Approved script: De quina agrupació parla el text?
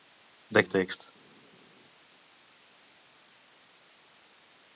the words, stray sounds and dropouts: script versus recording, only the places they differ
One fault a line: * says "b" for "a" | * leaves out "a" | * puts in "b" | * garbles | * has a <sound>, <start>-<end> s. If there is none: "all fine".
* leaves out "quina agrupació parla"